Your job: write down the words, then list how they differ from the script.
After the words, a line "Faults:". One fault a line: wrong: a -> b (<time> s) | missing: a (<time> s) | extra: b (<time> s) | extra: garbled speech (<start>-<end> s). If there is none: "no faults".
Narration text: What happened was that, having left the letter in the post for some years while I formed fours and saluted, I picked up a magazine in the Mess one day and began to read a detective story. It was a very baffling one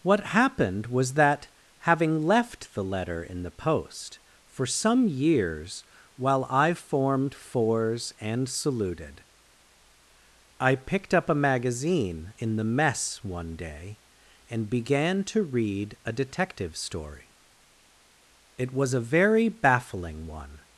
What happened was that, having left the letter in the post for some years while I formed fours and saluted, I picked up a magazine in the Mess one day and began to read a detective story. It was a very baffling one
Faults:
no faults